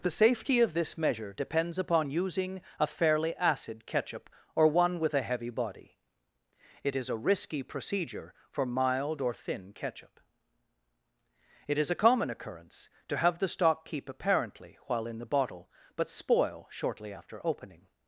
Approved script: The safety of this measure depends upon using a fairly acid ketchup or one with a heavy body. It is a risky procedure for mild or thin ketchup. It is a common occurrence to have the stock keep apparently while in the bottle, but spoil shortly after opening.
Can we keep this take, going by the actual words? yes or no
yes